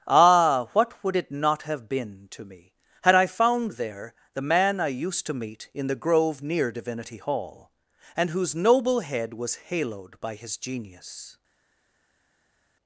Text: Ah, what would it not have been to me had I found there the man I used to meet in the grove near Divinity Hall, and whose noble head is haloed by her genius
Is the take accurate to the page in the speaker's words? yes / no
no